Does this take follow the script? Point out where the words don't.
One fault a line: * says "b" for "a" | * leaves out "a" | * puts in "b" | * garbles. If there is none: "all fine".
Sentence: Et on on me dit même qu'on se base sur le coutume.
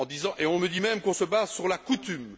* leaves out "on"
* says "la" for "le"